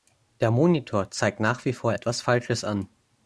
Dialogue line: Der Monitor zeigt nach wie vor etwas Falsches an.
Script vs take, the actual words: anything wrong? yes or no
no